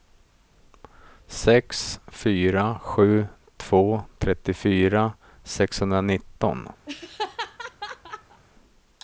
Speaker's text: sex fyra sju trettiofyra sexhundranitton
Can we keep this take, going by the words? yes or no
no